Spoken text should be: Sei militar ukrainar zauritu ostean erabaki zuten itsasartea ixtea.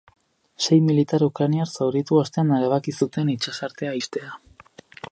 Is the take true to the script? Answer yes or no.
yes